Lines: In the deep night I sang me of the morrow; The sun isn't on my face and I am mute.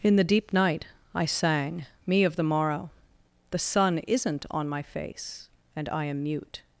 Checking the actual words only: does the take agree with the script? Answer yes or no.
yes